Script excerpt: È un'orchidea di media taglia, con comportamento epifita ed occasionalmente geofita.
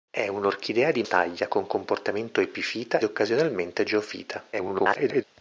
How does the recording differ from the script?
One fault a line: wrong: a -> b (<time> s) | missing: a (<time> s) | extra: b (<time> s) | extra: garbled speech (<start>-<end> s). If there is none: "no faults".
missing: media (1.0 s)
missing: ed (3.0 s)
extra: garbled speech (4.5-5.2 s)